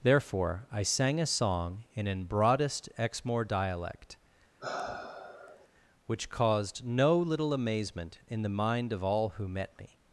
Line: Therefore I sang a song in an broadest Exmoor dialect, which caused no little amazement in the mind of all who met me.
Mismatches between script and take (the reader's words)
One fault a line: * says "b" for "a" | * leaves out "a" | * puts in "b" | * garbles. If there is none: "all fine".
all fine